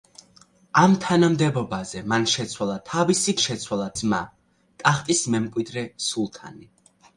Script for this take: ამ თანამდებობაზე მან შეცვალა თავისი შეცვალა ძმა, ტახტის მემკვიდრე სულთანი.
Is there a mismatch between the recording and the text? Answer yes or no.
no